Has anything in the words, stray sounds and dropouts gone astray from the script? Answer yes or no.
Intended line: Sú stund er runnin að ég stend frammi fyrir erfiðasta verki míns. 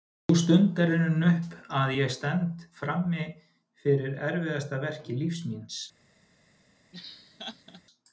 yes